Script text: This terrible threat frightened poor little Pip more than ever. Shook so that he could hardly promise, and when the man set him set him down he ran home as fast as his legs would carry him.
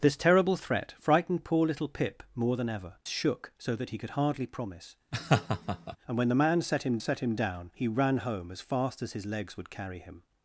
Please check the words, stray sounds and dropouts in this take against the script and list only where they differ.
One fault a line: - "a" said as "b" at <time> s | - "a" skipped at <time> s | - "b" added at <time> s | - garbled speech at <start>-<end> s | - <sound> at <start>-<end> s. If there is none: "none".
- laugh at 5.1-6.0 s